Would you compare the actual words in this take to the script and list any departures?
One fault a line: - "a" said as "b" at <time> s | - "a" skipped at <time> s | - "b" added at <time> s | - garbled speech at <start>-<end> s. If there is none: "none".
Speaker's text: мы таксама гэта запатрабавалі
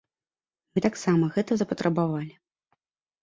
none